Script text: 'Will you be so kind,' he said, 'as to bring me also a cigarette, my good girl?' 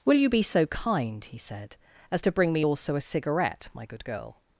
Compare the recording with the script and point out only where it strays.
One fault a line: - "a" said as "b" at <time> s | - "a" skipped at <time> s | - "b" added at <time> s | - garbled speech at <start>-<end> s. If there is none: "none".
none